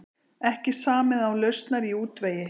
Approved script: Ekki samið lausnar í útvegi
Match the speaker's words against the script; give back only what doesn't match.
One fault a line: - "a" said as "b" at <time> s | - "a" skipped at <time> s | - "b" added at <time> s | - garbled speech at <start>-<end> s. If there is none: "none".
- "án" added at 1.3 s